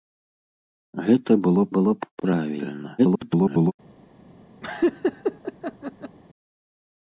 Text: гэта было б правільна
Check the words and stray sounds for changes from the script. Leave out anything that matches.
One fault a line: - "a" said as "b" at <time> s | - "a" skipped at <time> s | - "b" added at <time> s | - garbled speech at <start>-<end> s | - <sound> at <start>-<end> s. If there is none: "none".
- "было" added at 1.8 s
- garbled speech at 3.0-3.7 s
- laugh at 4.6-6.2 s